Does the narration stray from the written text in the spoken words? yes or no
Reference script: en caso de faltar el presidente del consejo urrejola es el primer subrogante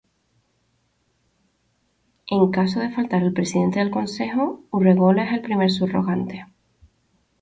no